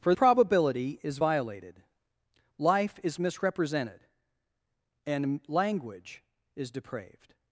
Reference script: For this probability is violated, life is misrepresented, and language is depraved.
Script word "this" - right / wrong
wrong